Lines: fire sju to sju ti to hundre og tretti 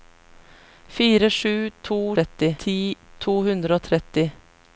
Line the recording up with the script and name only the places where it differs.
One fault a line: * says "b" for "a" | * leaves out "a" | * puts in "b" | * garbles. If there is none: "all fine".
* says "tretti" for "sju"